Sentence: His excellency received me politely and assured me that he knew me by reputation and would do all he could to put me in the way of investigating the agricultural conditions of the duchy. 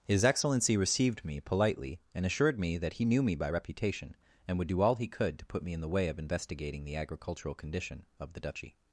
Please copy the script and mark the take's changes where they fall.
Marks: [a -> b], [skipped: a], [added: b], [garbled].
His excellency received me politely and assured me that he knew me by reputation and would do all he could to put me in the way of investigating the agricultural [conditions -> condition] of the duchy.